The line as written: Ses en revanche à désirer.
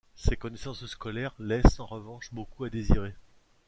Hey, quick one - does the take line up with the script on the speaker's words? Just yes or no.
no